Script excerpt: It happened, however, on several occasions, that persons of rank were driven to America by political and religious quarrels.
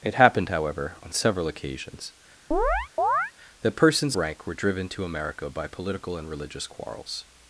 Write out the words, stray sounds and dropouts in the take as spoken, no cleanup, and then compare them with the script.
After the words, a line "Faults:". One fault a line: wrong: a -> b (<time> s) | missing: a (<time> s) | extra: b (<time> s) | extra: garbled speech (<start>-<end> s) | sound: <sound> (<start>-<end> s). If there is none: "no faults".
It happened, however, on several occasions, that persons rank were driven to America by political and religious quarrels.
Faults:
sound: chirp (2.5-3.3 s)
missing: of (4.2 s)